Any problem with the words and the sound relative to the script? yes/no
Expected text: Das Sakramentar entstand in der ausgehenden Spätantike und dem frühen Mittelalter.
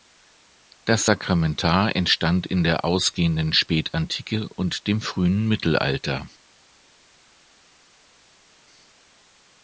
no